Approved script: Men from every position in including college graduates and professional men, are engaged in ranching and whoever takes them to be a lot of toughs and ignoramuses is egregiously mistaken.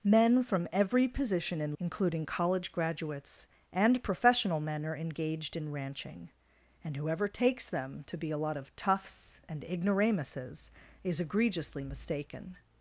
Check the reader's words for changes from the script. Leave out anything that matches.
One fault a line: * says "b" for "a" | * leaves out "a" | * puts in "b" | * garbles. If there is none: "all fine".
all fine